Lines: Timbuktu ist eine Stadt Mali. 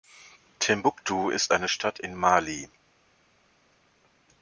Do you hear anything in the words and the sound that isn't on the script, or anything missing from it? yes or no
yes